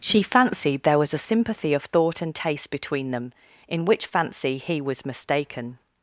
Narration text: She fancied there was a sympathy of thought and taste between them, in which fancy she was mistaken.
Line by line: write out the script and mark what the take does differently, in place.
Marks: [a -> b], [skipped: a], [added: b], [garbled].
She fancied there was a sympathy of thought and taste between them, in which fancy [she -> he] was mistaken.